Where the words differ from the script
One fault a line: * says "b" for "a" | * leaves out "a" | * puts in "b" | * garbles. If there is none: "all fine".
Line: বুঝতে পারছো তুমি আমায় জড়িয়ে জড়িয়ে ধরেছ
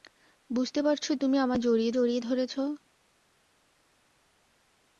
all fine